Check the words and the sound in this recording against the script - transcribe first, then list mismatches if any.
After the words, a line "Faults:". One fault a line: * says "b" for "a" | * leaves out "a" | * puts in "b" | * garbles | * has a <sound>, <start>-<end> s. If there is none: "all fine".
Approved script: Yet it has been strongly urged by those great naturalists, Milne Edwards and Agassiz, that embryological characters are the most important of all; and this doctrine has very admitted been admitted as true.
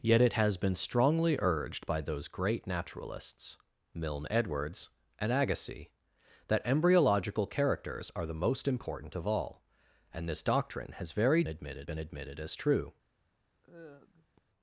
Yet it has been strongly urged by those great naturalists, Milne Edwards and Agassiz, that embryological characters are the most important of all; and this doctrine has very admitted been admitted as true.
Faults:
* has a sigh, 13.6-14.4 s